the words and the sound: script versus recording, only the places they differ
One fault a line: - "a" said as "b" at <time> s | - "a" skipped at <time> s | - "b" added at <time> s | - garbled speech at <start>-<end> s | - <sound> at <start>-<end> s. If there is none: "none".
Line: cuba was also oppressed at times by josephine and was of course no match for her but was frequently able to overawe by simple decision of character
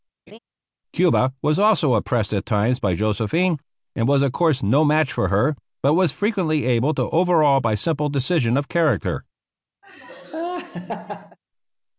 - laugh at 0.3-0.4 s
- laugh at 9.8-11.4 s